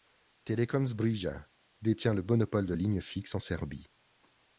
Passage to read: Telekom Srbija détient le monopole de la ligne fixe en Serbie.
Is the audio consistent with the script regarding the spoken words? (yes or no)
no